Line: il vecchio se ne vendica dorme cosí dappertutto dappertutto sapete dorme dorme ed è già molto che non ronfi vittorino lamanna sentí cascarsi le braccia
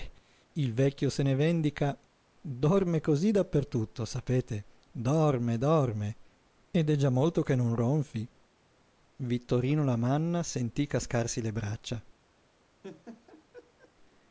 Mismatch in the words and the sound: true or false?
true